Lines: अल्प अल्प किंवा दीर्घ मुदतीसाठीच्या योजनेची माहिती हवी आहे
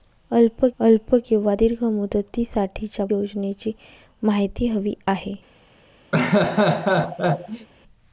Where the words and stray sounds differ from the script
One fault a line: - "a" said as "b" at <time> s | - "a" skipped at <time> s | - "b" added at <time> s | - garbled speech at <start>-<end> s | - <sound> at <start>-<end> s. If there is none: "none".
- laugh at 6.1-7.7 s